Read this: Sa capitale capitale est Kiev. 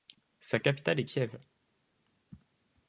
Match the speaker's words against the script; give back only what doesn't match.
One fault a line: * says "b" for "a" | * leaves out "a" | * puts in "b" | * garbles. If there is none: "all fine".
* leaves out "capitale"